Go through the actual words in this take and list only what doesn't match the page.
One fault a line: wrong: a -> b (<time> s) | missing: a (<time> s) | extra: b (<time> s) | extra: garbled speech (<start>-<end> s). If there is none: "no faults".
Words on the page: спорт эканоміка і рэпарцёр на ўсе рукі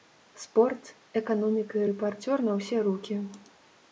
no faults